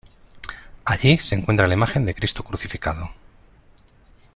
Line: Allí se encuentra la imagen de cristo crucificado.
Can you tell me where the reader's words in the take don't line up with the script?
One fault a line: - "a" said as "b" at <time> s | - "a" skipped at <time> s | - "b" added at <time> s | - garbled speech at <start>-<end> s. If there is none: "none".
none